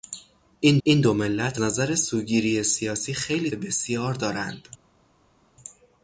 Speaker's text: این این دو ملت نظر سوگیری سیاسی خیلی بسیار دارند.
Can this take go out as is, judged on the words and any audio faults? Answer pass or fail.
pass